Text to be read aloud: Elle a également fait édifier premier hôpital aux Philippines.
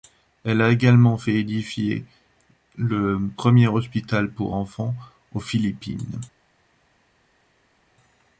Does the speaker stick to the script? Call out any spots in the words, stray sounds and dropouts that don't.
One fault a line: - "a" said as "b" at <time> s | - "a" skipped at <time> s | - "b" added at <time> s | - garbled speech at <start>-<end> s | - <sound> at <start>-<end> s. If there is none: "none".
- "le" added at 2.8 s
- "pour enfants" added at 4.3 s